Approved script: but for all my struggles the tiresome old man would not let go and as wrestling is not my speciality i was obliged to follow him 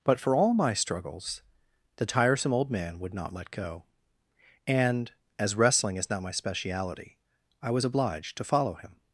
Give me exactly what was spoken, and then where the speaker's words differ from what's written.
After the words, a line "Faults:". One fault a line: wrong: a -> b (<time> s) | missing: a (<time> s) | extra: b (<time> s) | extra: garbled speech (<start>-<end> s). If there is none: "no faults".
but for all my struggles the tiresome old man would not let go and as wrestling is not my speciality i was obliged to follow him
Faults:
no faults